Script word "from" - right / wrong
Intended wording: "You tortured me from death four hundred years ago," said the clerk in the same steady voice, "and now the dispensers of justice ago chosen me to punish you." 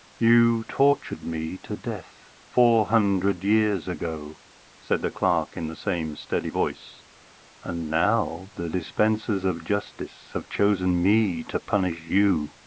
wrong